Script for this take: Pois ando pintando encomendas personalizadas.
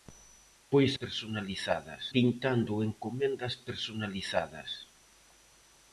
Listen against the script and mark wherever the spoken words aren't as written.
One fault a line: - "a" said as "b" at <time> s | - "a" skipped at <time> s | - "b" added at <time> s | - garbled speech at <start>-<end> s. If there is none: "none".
- "ando" said as "personalizadas" at 1.0 s